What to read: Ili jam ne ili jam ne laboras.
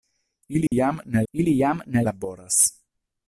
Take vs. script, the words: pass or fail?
pass